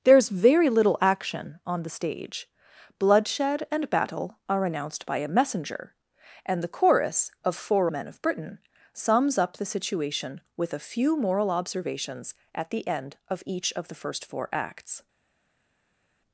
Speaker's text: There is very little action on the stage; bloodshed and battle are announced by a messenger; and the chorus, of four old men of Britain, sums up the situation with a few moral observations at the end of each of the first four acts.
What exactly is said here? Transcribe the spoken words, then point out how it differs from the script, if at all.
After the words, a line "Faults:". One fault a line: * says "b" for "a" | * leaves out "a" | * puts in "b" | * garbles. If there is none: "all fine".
There is very little action on the stage; bloodshed and battle are announced by a messenger; and the chorus, of four men of Britain, sums up the situation with a few moral observations at the end of each of the first four acts.
Faults:
* leaves out "old"